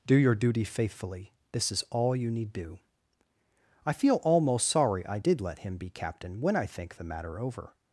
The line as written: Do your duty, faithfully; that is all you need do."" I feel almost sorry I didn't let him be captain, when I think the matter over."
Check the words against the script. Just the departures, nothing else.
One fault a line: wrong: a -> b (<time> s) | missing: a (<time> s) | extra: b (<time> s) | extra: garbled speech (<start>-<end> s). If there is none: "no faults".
wrong: that -> this (1.5 s)
wrong: didn't -> did (5.2 s)